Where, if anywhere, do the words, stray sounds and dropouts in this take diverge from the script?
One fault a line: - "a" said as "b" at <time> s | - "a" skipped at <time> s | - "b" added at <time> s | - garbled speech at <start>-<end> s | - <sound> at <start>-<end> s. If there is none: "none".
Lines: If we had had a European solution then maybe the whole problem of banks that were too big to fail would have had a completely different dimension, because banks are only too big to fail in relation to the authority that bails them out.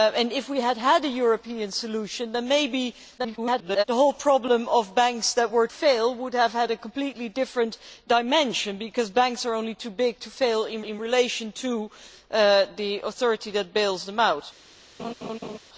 - garbled speech at 3.2-3.8 s
- "too big to" skipped at 5.7 s
- "in" added at 10.8 s
- laugh at 15.0-15.6 s